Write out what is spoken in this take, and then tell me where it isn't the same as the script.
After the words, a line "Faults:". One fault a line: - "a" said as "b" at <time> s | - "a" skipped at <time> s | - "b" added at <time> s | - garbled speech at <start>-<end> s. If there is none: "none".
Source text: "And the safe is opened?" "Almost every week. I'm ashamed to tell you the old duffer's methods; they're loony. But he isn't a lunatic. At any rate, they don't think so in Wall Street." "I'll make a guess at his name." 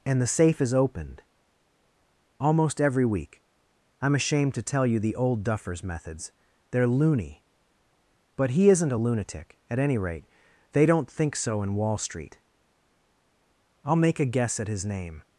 "And the safe is opened?" "Almost every week. I'm ashamed to tell you the old duffer's methods; they're loony. But he isn't a lunatic. At any rate, they don't think so in Wall Street." "I'll make a guess at his name."
Faults:
none